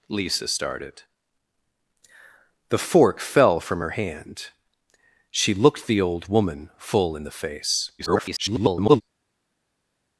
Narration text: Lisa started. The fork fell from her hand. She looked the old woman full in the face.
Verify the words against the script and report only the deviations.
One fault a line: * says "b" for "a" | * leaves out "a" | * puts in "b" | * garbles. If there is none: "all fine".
* garbles